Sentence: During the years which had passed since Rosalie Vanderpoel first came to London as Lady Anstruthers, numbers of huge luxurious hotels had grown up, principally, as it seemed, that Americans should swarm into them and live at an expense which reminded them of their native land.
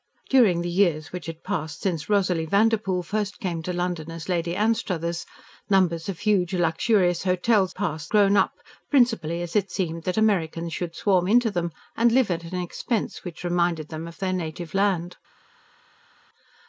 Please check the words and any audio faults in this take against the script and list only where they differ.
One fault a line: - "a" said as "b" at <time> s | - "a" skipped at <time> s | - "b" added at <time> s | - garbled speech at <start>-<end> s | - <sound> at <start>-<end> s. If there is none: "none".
- "had" said as "passed" at 7.7 s